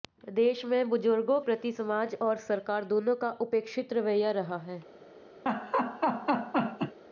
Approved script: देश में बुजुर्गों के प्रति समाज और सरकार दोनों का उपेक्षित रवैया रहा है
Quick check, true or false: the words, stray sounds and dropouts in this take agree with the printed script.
false